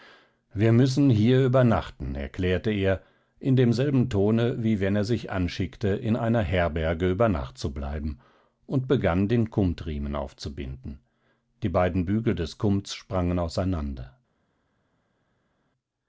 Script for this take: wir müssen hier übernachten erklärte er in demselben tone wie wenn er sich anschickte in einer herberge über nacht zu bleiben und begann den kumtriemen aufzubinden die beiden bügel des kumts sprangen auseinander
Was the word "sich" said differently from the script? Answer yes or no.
no